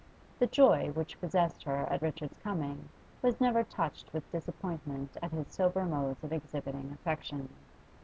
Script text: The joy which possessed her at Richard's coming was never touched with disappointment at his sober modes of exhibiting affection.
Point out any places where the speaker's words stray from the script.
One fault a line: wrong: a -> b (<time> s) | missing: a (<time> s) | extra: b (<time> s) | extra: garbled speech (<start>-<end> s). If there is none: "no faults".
no faults